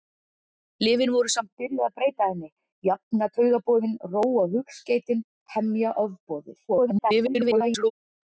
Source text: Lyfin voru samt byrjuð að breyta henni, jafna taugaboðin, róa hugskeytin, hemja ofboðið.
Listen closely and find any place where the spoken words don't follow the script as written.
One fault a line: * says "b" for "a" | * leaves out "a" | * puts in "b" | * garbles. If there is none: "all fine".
* garbles